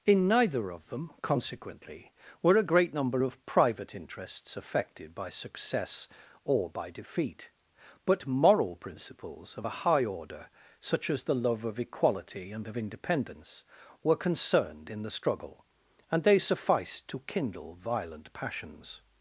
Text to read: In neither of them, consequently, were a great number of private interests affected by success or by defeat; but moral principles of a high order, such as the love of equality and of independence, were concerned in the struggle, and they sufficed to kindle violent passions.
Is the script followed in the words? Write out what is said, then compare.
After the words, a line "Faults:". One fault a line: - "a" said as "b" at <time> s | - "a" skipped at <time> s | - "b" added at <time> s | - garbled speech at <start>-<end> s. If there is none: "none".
In neither of them, consequently, were a great number of private interests affected by success or by defeat; but moral principles of a high order, such as the love of equality and of independence, were concerned in the struggle, and they sufficed to kindle violent passions.
Faults:
none